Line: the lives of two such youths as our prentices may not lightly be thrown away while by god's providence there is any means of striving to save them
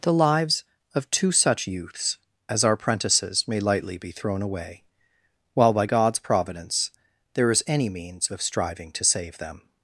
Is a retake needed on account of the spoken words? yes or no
yes